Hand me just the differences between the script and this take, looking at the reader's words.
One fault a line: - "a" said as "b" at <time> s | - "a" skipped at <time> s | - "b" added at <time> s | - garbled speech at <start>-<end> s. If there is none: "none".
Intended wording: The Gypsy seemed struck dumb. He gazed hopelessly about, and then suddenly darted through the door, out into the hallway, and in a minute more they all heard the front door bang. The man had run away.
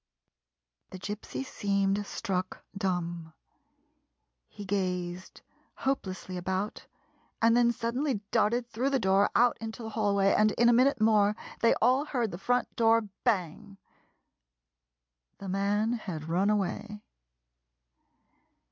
none